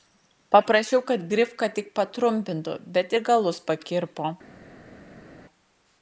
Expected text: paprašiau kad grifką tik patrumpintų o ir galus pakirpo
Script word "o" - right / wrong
wrong